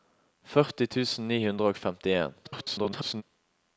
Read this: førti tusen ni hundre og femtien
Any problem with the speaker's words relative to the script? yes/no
yes